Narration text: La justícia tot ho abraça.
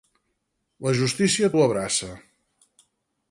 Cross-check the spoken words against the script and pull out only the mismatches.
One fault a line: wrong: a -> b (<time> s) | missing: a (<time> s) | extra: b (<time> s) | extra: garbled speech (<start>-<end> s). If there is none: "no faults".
missing: tot (1.5 s)